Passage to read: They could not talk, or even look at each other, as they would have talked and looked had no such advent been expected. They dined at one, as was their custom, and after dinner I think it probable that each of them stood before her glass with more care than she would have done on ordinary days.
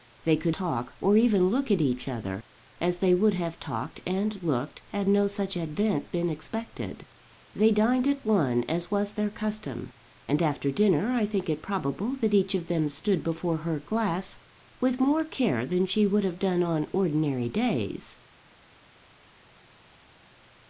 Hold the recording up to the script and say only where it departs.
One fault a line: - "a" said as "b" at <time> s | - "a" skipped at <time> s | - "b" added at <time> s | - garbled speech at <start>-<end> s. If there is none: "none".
- "not" skipped at 0.6 s